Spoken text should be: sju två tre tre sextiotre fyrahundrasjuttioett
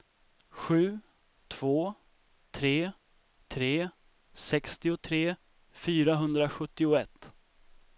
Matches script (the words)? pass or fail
pass